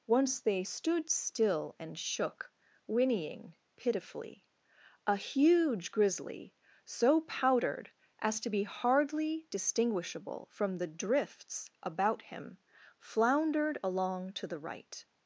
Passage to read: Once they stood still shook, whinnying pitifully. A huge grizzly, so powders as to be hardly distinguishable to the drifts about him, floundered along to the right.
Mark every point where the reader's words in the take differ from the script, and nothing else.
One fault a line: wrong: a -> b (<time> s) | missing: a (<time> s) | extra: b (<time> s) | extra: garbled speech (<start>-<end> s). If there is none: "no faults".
extra: and (1.8 s)
wrong: powders -> powdered (7.2 s)
wrong: to -> from (10.5 s)